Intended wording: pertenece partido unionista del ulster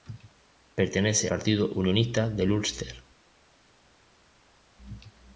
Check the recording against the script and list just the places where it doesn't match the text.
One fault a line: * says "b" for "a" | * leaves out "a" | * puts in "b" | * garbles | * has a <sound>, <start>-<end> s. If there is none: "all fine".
all fine